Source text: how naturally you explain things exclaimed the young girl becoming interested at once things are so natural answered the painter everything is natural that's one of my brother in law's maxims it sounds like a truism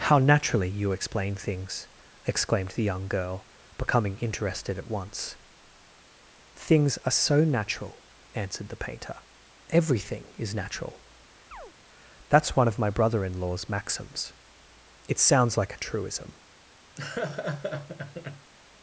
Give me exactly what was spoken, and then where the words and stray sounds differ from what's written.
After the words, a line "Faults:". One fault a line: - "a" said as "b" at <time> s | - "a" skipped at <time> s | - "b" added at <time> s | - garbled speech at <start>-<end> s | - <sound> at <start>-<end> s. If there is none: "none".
how naturally you explain things exclaimed the young girl becoming interested at once things are so natural answered the painter everything is natural that's one of my brother in law's maxims it sounds like a truism
Faults:
- chirp at 11.5-11.7 s
- laugh at 17.0-18.5 s